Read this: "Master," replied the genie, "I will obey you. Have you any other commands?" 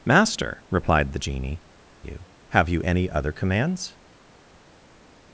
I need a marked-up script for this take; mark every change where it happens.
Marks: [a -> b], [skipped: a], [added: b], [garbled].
"Master," replied the genie, [skipped: "I will obey] you. Have you any other commands?"